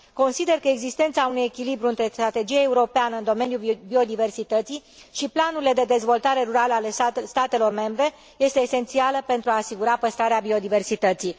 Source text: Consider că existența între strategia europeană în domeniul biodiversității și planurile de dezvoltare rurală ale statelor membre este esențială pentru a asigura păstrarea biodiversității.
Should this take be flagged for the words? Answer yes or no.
yes